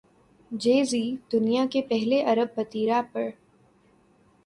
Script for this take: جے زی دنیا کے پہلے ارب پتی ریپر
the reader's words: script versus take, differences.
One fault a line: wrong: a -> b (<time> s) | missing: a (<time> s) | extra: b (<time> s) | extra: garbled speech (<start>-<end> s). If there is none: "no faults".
no faults